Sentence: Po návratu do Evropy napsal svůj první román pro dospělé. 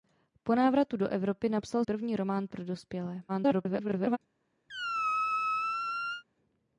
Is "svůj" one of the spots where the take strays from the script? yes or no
yes